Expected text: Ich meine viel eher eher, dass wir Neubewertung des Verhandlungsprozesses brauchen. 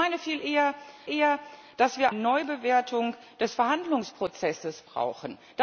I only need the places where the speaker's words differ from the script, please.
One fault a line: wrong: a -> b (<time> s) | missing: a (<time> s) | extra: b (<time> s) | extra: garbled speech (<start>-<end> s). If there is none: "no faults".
no faults